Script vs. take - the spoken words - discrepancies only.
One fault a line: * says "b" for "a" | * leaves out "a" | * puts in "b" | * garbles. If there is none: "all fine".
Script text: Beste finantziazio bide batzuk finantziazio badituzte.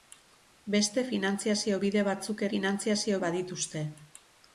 all fine